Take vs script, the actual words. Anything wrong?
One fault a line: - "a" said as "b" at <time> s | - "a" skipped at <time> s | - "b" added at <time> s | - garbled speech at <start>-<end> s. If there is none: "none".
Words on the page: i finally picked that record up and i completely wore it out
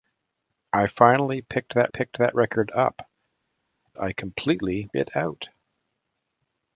- "picked that" added at 1.9 s
- "and" skipped at 3.1 s
- "wore" skipped at 4.9 s